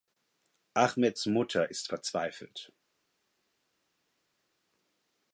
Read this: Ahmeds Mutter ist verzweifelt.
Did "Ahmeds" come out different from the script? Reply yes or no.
no